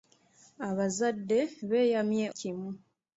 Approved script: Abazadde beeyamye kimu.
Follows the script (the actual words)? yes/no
yes